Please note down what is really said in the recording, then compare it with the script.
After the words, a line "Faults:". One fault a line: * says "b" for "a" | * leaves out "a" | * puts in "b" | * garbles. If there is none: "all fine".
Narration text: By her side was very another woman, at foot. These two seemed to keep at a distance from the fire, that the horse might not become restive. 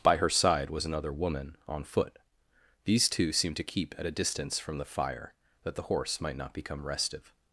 By her side was another woman, on foot. These two seemed to keep at a distance from the fire, that the horse might not become restive.
Faults:
* leaves out "very"
* says "on" for "at"